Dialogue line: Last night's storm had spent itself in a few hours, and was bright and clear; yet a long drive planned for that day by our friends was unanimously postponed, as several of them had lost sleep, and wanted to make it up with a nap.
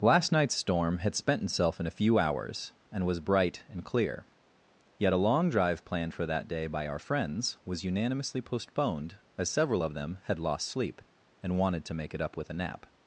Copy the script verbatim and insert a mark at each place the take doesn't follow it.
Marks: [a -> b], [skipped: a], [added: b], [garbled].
Last night's storm had spent itself in a few hours, and was bright and clear; yet a long drive planned for that day by our friends was unanimously postponed, as several of them had lost sleep, and wanted to make it up with a nap.